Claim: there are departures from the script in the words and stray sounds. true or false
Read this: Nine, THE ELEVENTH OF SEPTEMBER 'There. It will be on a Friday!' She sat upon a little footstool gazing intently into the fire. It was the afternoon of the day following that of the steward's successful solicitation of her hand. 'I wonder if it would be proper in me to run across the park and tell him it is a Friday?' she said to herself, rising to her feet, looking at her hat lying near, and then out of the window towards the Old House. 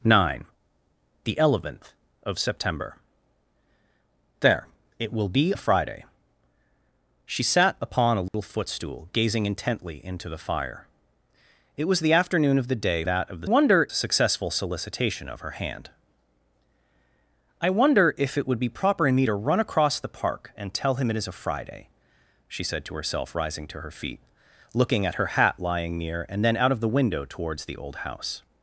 true